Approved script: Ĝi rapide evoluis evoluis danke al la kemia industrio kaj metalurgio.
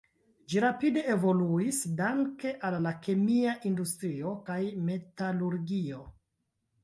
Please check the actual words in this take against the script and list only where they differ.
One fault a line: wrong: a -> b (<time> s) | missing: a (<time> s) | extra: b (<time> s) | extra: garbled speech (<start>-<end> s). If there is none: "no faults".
missing: evoluis (1.8 s)